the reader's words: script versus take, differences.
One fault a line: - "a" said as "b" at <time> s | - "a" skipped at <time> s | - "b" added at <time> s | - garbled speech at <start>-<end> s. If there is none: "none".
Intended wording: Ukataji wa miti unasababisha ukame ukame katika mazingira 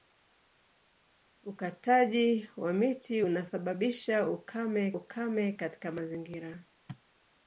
none